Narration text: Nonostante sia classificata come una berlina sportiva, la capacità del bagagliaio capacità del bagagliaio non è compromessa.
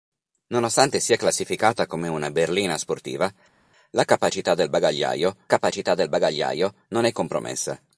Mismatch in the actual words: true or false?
false